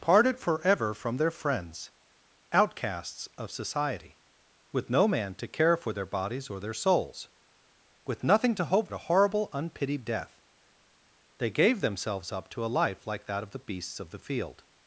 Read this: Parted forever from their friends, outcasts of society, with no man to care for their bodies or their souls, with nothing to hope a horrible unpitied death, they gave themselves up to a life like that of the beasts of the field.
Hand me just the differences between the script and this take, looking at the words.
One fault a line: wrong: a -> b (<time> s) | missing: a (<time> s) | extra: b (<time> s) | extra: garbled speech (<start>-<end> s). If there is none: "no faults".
no faults